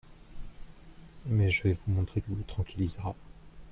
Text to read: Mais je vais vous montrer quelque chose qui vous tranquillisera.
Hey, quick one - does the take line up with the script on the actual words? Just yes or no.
no